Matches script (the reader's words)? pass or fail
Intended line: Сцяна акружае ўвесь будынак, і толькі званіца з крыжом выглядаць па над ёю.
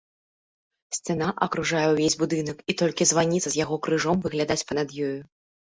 fail